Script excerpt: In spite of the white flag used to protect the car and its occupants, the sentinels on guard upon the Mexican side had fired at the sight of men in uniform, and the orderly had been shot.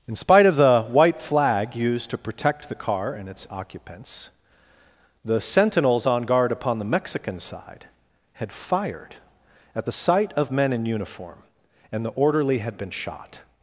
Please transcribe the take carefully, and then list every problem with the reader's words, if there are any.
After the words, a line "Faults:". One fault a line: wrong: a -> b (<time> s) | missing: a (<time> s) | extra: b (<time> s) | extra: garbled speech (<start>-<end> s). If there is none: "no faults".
In spite of the white flag used to protect the car and its occupants, the sentinels on guard upon the Mexican side had fired at the sight of men in uniform, and the orderly had been shot.
Faults:
no faults